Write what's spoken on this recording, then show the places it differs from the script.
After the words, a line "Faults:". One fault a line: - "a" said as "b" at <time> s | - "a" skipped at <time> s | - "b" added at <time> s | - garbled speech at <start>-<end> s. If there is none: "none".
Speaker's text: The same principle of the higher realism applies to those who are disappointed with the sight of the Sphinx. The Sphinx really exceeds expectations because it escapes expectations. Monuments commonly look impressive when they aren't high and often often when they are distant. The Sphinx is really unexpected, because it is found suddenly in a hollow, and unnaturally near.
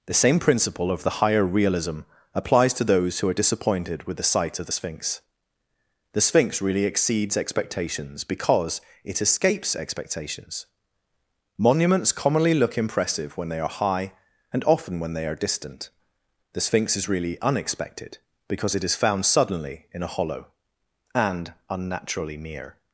The same principle of the higher realism applies to those who are disappointed with the sight of the Sphinx. The Sphinx really exceeds expectations because it escapes expectations. Monuments commonly look impressive when they are high and often when they are distant. The Sphinx is really unexpected, because it is found suddenly in a hollow, and unnaturally near.
Faults:
- "aren't" said as "are" at 13.6 s
- "often" skipped at 15.0 s